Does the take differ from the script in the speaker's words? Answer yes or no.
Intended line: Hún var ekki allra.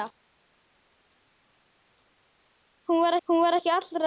yes